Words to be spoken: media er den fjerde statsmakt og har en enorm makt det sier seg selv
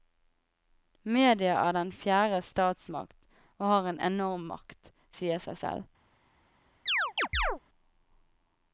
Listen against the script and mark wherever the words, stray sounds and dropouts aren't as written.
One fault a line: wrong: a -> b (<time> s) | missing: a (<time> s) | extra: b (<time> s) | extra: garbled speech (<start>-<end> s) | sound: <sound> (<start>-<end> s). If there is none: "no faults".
missing: det (4.9 s)
sound: chirp (6.9-7.6 s)